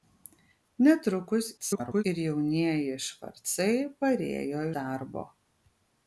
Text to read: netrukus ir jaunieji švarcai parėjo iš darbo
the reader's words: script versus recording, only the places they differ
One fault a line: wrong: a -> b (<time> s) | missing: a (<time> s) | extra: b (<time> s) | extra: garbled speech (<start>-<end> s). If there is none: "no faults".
extra: garbled speech (1.6-2.0 s)
missing: iš (4.7 s)